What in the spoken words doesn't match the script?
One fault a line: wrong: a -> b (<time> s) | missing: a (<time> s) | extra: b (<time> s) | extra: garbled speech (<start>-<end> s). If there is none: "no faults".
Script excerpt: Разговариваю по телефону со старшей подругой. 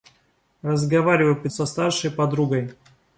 missing: телефону (1.5 s)